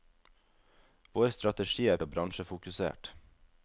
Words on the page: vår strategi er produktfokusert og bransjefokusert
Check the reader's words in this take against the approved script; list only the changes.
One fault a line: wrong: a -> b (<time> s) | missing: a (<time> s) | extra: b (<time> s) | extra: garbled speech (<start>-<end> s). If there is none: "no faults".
missing: produktfokusert (2.0 s)